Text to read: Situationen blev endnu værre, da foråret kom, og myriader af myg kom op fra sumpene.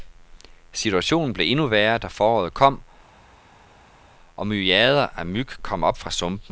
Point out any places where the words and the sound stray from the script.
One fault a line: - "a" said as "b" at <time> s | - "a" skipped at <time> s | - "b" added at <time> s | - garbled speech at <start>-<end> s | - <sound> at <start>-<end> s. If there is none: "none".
none